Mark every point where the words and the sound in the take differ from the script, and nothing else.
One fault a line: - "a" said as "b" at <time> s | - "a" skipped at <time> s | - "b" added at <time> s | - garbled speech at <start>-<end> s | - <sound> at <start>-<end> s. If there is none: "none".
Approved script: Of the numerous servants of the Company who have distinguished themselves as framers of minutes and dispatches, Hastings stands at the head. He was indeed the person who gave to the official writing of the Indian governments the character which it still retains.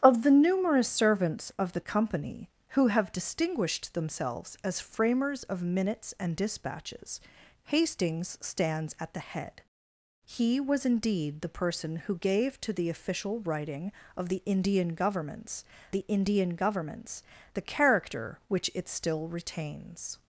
- "Indian governments the" added at 16.1 s